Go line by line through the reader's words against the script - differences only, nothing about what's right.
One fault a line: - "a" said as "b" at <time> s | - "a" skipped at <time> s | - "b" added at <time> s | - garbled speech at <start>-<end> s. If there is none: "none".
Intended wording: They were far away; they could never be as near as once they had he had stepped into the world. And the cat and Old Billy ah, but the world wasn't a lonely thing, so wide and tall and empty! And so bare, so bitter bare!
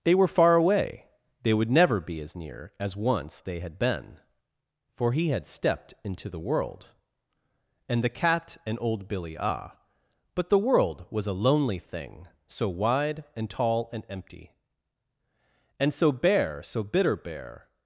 - "could" said as "would" at 1.5 s
- "been for" added at 3.8 s
- "wasn't" said as "was" at 11.1 s